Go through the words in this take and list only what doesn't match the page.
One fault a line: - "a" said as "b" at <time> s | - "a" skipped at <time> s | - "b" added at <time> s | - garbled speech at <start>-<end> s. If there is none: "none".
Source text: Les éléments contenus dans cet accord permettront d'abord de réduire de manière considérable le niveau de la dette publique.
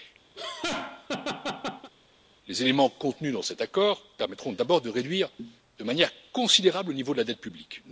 none